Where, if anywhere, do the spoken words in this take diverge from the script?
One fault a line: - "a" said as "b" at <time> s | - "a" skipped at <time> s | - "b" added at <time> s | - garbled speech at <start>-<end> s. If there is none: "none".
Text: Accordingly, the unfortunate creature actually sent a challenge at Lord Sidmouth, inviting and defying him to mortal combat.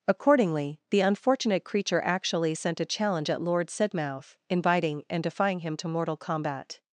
none